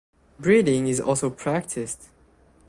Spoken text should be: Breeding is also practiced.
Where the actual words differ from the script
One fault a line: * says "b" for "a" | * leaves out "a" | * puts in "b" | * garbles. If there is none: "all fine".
all fine